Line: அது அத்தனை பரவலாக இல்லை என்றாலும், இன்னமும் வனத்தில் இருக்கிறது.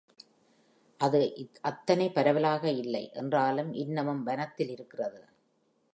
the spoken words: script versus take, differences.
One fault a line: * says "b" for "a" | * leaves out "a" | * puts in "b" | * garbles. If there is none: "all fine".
all fine